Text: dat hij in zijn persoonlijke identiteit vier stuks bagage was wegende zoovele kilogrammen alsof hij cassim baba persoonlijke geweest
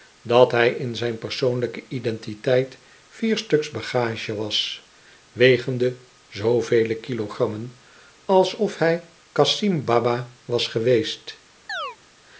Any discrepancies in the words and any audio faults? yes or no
yes